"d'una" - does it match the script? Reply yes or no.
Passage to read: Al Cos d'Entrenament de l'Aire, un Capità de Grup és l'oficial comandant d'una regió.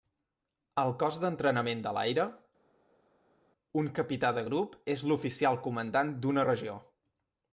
yes